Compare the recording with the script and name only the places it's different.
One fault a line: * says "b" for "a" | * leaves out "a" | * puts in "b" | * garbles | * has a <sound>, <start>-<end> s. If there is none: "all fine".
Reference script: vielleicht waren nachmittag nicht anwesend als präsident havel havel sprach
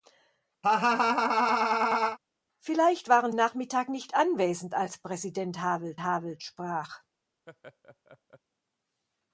* has a laugh, 0.6-2.2 s
* has a laugh, 7.5-8.4 s